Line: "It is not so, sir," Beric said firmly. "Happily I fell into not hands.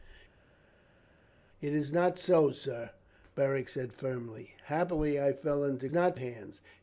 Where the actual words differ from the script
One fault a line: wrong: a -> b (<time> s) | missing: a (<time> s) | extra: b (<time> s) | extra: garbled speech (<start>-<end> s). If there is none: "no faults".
no faults